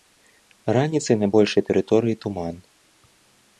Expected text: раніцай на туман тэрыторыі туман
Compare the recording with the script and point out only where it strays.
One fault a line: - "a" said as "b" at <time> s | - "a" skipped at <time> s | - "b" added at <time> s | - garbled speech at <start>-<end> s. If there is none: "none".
- "туман" said as "большай" at 1.4 s